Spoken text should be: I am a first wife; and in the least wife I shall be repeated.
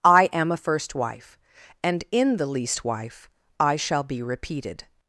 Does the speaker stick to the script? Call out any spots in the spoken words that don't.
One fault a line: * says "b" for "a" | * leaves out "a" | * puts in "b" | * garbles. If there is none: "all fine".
all fine